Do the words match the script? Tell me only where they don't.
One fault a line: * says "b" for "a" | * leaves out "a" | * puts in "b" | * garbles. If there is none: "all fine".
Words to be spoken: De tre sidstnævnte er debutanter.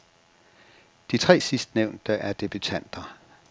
all fine